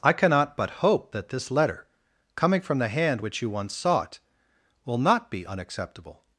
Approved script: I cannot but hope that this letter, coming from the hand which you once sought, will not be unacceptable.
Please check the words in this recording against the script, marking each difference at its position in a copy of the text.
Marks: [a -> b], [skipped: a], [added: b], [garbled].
I cannot but hope that this letter, coming from the hand which you once sought, will not be unacceptable.